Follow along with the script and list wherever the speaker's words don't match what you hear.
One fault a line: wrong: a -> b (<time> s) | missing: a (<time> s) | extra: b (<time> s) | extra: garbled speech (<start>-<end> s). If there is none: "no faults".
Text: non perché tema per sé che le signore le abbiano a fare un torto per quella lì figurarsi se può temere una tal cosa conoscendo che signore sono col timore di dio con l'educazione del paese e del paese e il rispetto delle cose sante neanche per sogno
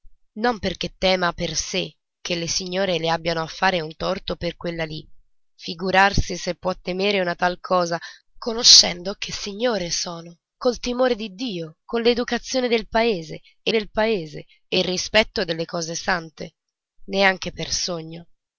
no faults